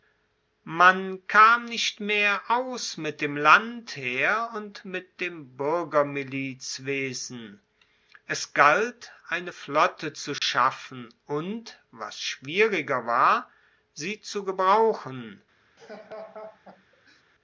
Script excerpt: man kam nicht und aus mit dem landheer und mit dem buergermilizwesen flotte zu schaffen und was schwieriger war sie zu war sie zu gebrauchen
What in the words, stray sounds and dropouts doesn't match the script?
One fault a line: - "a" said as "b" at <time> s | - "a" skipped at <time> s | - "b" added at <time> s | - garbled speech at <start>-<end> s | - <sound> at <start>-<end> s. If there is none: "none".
- "und" said as "mehr" at 2.0 s
- "es galt eine" added at 8.2 s
- dropout at 10.4-10.4 s
- "war sie zu" skipped at 14.4 s
- laugh at 15.8-17.2 s